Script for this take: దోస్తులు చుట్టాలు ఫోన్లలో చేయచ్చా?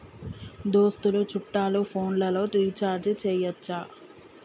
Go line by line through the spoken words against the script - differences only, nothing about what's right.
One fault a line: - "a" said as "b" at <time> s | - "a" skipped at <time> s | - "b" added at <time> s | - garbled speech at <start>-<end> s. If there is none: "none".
- "రీఛార్జి" added at 2.5 s